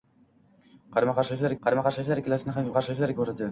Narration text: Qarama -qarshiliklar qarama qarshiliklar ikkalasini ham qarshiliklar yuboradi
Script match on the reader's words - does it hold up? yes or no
yes